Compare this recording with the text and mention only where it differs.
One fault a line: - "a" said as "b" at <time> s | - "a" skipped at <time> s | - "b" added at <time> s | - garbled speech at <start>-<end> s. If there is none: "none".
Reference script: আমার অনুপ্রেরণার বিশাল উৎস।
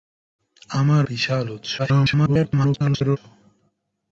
- "অনুপ্রেরণার" skipped at 1.0 s
- garbled speech at 1.8-3.2 s